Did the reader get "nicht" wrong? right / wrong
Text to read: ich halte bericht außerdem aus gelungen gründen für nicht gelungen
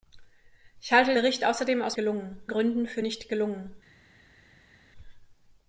right